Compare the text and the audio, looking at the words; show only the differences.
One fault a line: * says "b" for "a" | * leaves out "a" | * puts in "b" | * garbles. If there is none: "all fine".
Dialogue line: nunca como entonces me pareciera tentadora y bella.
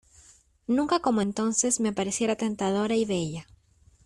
all fine